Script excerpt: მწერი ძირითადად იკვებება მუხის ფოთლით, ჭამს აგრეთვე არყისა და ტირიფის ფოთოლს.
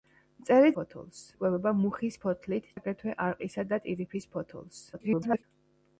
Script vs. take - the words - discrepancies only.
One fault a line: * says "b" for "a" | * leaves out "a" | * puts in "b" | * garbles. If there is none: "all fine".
* says "ფოთოლს" for "ძირითადად"
* leaves out "ჭამს"
* garbles